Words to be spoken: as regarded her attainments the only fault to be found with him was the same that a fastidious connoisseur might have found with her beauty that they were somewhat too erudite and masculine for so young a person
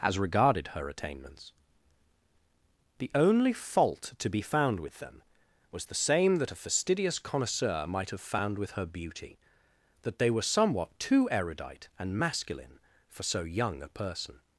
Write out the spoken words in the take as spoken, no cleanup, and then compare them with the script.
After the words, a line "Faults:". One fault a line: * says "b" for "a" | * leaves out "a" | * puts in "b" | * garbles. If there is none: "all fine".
as regarded her attainments the only fault to be found with them was the same that a fastidious connoisseur might have found with her beauty that they were somewhat too erudite and masculine for so young a person
Faults:
* says "them" for "him"